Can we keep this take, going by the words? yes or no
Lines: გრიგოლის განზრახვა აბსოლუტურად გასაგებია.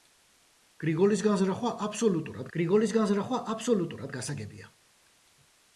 no